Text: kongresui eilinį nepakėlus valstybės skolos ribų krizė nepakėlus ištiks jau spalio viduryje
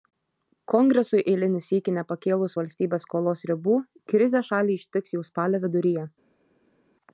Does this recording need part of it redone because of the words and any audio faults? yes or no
yes